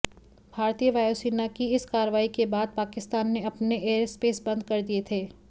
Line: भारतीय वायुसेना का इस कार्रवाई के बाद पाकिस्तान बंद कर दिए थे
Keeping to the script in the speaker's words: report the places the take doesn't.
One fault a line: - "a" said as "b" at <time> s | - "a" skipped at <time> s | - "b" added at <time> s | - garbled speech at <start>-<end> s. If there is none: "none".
- "का" said as "की" at 1.5 s
- "ने अपने एयरस्पेस" added at 3.3 s